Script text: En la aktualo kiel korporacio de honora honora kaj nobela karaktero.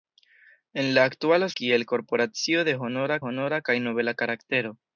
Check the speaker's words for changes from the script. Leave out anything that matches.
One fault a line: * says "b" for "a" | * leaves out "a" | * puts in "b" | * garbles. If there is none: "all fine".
all fine